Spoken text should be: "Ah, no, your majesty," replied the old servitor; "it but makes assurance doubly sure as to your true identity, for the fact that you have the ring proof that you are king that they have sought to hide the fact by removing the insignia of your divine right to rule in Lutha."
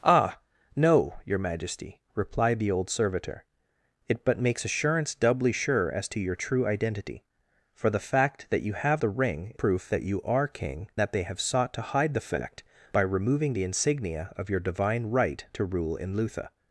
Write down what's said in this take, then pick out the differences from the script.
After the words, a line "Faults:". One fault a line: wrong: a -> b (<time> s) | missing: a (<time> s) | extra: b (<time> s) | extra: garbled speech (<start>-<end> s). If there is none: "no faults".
"Ah, no, your majesty," replied the old servitor; "it but makes assurance doubly sure as to your true identity, for the fact that you have the ring proof that you are king that they have sought to hide the fact by removing the insignia of your divine right to rule in Lutha."
Faults:
no faults